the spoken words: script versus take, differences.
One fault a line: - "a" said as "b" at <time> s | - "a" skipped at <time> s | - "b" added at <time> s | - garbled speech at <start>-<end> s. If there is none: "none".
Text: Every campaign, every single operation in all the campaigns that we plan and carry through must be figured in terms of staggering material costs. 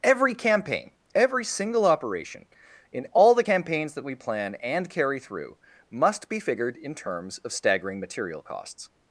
none